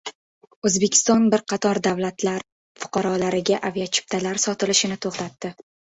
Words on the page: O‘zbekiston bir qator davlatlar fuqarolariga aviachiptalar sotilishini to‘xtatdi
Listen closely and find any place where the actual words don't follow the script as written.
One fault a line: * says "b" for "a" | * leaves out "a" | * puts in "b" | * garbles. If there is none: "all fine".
all fine